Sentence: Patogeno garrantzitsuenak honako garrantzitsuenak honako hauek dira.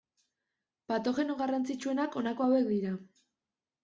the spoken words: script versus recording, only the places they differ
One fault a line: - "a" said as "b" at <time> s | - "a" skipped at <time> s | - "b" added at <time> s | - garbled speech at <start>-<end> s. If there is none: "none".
- "garrantzitsuenak honako" skipped at 2.5 s